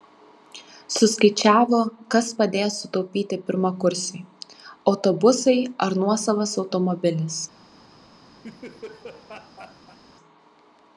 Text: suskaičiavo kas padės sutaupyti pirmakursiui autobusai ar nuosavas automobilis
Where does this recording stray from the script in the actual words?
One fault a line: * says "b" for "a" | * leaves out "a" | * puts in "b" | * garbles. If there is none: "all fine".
all fine